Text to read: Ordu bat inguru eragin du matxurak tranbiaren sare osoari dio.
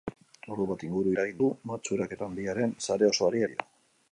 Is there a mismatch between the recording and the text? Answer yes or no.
no